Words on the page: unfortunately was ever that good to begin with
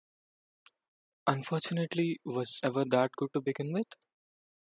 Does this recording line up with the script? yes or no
yes